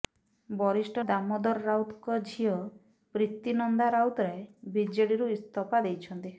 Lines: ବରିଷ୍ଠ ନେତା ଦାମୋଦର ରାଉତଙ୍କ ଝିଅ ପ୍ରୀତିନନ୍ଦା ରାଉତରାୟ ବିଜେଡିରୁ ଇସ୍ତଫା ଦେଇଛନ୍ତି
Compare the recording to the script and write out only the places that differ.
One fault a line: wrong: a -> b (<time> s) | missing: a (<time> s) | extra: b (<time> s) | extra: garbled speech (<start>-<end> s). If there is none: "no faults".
missing: ନେତା (1.0 s)